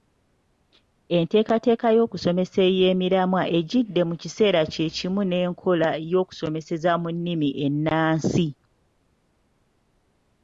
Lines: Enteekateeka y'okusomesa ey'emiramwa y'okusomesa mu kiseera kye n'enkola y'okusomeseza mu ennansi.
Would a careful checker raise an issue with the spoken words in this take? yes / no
yes